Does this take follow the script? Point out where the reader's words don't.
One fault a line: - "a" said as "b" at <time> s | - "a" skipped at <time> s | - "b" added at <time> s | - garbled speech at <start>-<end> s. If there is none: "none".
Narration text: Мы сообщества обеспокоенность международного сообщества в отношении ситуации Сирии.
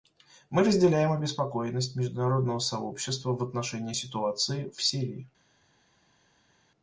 - "сообщества" said as "разделяем" at 0.6 s
- "в" added at 4.7 s